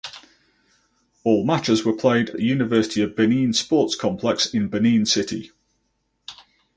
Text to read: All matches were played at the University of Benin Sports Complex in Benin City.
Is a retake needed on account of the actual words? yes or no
yes